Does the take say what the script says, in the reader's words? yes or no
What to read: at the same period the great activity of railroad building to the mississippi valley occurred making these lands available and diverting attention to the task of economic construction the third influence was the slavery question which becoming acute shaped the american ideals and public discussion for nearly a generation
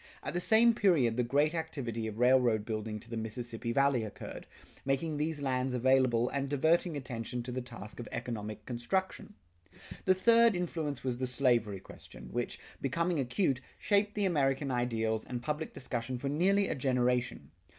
yes